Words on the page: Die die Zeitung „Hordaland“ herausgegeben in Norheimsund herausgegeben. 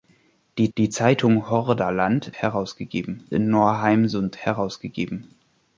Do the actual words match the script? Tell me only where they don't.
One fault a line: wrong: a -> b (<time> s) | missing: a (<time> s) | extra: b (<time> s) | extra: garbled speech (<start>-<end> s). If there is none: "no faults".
no faults